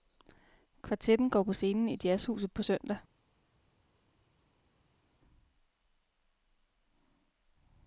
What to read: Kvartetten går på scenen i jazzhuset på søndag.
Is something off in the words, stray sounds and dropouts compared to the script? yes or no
no